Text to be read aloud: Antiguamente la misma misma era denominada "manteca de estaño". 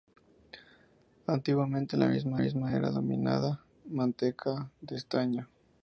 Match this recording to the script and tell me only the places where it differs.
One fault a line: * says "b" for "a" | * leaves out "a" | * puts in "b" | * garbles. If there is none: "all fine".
all fine